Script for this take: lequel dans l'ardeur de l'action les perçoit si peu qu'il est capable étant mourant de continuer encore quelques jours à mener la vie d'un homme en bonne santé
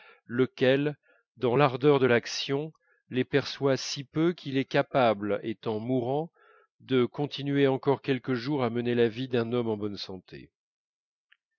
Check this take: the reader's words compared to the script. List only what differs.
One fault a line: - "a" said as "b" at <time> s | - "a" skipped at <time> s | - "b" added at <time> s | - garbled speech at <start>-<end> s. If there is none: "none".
none